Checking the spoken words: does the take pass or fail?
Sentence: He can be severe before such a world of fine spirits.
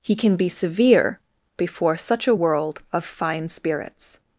pass